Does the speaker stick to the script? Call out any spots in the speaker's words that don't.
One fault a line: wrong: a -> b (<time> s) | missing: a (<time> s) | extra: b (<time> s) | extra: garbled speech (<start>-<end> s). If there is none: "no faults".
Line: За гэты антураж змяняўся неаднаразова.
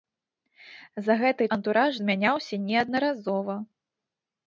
no faults